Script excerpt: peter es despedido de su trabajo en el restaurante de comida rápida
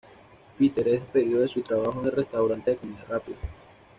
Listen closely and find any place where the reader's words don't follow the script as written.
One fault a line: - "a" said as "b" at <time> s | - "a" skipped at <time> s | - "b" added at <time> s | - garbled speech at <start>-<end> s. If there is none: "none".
none